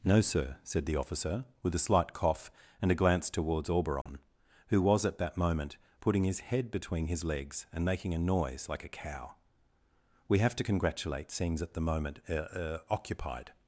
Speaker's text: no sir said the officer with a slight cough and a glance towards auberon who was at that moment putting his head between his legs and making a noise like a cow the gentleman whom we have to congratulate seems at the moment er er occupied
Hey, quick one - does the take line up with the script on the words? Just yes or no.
no